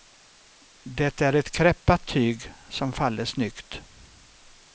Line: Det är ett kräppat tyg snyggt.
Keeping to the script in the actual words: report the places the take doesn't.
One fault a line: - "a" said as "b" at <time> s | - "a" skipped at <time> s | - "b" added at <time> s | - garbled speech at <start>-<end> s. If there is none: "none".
- "som faller" added at 2.7 s